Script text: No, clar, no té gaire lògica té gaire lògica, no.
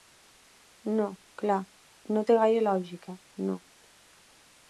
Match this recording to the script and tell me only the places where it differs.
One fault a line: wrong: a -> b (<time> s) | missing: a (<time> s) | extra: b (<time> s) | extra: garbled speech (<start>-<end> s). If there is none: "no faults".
missing: té gaire lògica (3.2 s)